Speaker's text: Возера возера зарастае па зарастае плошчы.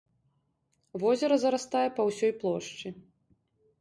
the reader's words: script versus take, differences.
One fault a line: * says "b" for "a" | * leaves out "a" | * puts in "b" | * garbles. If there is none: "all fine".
* leaves out "возера"
* says "ўсёй" for "зарастае"